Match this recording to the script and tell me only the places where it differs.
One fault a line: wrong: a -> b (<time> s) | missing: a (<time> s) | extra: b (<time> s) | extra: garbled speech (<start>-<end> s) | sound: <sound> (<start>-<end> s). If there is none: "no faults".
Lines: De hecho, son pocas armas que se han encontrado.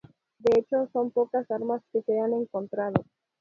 no faults